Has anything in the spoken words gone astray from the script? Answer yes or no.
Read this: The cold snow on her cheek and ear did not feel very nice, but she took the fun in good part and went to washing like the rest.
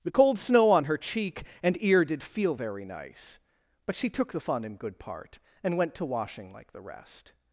yes